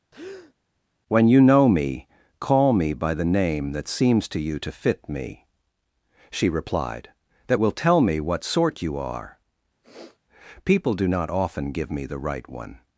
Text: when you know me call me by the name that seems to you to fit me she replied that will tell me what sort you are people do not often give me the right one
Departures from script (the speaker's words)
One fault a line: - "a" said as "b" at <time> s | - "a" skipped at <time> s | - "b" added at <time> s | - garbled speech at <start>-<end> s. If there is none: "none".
none